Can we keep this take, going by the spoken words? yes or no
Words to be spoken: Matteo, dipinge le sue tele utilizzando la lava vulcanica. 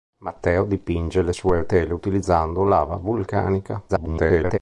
no